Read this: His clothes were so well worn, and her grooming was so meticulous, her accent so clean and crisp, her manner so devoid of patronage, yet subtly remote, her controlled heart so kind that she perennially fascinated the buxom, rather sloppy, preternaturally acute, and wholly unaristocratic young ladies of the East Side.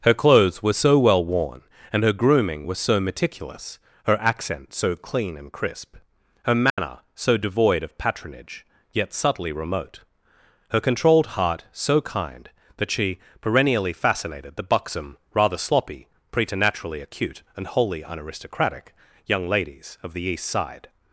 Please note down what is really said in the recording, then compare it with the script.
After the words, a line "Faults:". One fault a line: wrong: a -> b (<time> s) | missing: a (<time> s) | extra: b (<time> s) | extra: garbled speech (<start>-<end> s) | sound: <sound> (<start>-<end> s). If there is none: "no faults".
Her clothes were so well worn, and her grooming was so meticulous, her accent so clean and crisp, her manner so devoid of patronage, yet subtly remote, her controlled heart so kind that she perennially fascinated the buxom, rather sloppy, preternaturally acute, and wholly unaristocratic young ladies of the East Side.
Faults:
wrong: His -> Her (0.0 s)
sound: dropout (6.7-6.8 s)